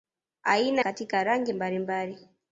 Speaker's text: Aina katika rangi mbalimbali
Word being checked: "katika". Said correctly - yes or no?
yes